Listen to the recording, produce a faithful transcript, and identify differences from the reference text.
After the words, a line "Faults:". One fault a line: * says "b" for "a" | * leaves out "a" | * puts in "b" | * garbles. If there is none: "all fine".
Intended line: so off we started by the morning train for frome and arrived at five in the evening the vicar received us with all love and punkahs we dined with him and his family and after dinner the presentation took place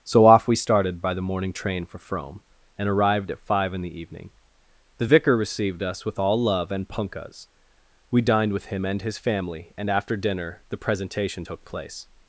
so off we started by the morning train for frome and arrived at five in the evening the vicar received us with all love and punkahs we dined with him and his family and after dinner the presentation took place
Faults:
all fine